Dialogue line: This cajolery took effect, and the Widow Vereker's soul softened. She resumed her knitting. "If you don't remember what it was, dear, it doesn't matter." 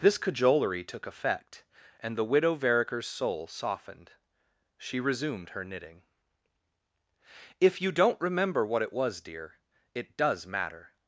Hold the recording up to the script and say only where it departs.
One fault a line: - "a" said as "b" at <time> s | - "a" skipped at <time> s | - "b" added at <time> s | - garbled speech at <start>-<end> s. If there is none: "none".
- "doesn't" said as "does" at 10.2 s